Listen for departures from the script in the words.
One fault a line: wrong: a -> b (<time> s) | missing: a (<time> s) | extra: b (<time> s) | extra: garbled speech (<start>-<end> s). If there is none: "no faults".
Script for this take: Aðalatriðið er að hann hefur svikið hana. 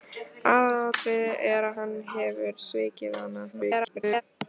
extra: garbled speech (3.5-4.2 s)